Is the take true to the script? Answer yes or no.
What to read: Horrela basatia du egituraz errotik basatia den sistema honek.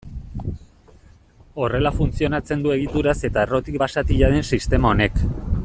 no